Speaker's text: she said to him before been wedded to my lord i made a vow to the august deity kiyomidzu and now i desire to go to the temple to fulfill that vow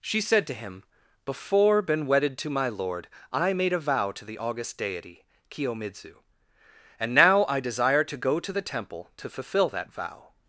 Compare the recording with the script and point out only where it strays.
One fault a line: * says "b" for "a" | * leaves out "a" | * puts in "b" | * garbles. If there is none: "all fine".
all fine